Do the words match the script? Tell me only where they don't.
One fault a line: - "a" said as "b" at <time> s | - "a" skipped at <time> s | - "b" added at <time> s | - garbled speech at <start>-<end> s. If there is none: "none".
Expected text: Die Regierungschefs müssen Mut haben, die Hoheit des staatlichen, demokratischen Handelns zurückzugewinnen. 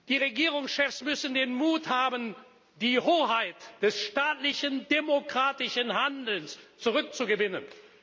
- "den" added at 1.4 s